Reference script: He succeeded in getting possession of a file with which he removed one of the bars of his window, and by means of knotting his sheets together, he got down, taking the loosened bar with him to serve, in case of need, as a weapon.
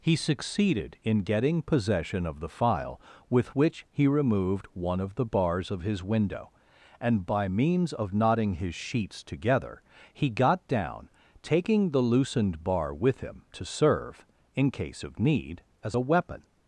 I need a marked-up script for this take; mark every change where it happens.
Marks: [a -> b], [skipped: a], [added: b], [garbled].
He succeeded in getting possession of [a -> the] file with which he removed one of the bars of his window, and by means of knotting his sheets together, he got down, taking the loosened bar with him to serve, in case of need, as a weapon.